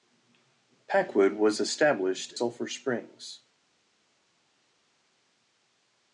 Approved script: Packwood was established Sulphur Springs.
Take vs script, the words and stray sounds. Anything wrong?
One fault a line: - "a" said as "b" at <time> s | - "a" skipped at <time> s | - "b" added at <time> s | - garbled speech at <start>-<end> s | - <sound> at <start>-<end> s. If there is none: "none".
none